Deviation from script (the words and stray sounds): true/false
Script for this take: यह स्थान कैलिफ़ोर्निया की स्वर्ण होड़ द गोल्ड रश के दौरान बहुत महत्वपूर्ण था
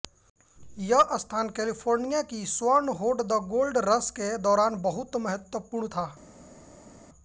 false